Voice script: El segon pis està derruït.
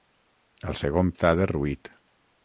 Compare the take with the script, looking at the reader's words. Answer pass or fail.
fail